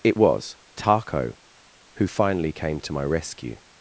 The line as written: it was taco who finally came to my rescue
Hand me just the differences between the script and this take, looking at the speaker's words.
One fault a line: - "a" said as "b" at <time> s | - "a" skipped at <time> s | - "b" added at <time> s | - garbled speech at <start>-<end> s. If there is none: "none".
none